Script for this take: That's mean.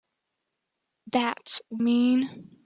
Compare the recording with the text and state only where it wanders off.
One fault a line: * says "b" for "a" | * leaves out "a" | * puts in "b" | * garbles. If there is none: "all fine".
all fine